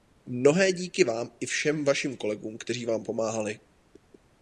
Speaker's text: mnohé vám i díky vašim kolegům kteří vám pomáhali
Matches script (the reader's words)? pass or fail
fail